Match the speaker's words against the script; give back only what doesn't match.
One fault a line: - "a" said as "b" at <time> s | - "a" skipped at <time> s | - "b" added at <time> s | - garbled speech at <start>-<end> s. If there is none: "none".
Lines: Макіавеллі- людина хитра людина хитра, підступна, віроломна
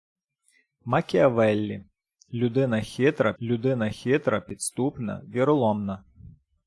none